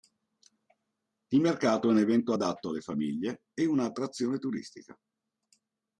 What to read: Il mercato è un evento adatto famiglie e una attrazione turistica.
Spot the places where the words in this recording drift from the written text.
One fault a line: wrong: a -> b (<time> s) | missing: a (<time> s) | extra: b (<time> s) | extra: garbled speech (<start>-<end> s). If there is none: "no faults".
extra: alle (2.7 s)